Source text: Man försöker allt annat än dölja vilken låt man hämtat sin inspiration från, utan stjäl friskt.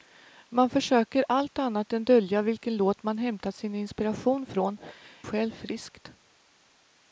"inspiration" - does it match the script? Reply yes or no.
yes